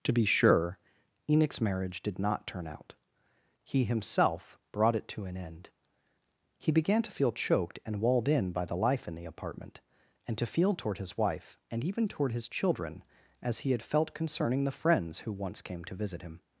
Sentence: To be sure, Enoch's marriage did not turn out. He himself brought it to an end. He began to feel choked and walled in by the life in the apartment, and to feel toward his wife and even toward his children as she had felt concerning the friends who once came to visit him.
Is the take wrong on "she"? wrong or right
wrong